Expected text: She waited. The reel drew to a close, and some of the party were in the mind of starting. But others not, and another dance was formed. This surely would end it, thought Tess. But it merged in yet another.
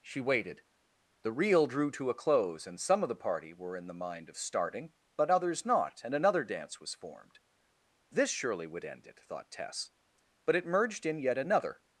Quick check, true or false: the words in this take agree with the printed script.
true